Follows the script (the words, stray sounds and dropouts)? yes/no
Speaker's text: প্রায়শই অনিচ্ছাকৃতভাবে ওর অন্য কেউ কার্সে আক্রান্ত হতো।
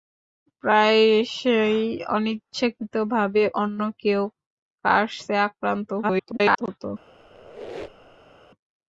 no